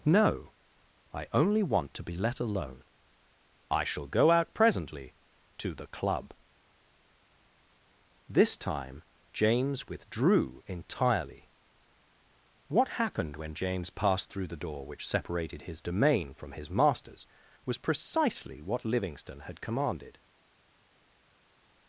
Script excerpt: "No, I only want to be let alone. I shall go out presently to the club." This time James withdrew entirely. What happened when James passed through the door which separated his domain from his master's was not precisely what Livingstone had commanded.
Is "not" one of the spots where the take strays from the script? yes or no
yes